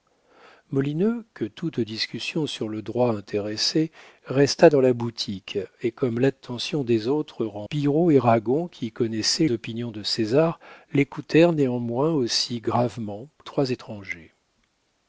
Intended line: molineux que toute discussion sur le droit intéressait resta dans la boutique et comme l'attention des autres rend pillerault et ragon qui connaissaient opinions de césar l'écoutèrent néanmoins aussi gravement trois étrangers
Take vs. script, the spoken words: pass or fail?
pass